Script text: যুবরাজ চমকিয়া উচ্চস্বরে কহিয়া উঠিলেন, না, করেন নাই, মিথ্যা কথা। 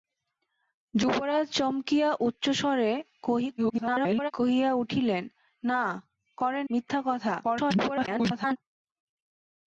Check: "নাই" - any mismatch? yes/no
yes